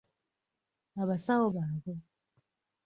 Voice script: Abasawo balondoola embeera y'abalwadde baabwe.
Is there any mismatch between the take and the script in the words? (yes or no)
yes